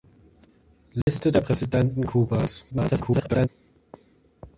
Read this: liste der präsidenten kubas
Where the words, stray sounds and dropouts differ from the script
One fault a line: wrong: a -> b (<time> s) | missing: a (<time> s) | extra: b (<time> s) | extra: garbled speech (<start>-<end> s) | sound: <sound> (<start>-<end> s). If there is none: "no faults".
sound: dropout (1.0-1.1 s)
extra: garbled speech (2.7-3.5 s)